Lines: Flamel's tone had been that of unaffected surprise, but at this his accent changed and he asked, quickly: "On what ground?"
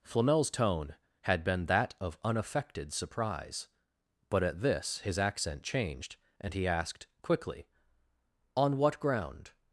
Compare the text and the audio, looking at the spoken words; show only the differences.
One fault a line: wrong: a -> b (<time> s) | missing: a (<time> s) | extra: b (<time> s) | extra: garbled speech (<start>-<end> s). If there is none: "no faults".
no faults